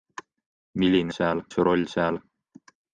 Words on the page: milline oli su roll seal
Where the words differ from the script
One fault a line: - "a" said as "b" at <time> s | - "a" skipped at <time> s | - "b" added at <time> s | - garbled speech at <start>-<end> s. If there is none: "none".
- "oli" said as "seal" at 1.1 s